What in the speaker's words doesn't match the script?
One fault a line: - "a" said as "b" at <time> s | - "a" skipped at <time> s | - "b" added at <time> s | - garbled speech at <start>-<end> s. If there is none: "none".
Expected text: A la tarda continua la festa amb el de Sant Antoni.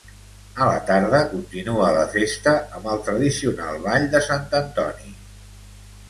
- "tradicional Ball" added at 3.1 s